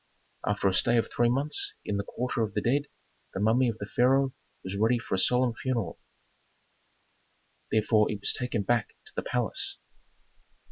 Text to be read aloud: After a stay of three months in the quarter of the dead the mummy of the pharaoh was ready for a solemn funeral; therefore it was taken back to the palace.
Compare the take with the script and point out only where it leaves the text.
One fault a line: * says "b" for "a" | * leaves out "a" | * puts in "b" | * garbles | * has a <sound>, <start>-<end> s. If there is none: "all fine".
all fine